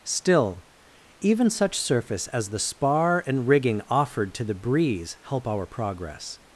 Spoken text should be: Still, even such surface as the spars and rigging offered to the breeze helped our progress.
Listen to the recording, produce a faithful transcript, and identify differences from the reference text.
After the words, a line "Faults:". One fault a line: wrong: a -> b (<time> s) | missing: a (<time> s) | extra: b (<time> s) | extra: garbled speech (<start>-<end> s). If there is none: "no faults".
Still, even such surface as the spar and rigging offered to the breeze help our progress.
Faults:
wrong: spars -> spar (2.6 s)
wrong: helped -> help (5.2 s)